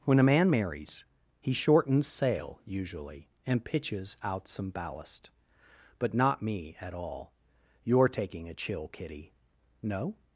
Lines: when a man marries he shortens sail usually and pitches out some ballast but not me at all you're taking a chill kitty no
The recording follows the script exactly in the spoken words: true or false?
true